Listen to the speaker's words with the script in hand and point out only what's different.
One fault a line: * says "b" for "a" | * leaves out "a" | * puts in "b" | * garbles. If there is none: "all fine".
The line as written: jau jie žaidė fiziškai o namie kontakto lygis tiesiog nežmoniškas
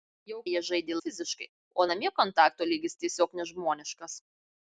all fine